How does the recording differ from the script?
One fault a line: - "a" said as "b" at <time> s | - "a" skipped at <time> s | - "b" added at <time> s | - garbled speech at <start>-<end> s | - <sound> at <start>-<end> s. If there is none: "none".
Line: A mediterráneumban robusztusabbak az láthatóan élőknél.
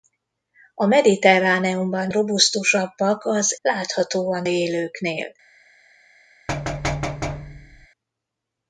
- thud at 6.5-7.9 s